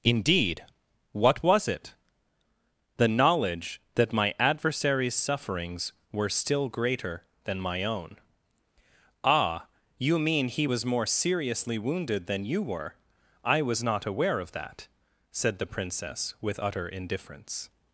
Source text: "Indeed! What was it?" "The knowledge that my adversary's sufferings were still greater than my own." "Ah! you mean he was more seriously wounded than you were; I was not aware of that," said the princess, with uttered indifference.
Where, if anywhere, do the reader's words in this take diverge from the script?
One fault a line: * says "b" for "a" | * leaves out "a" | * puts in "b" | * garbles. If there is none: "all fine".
* says "utter" for "uttered"